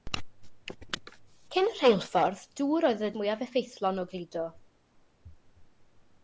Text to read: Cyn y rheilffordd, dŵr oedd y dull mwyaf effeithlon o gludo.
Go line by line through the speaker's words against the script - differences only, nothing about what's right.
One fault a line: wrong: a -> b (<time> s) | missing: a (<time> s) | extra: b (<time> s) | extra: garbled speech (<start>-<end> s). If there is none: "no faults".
missing: dull (3.1 s)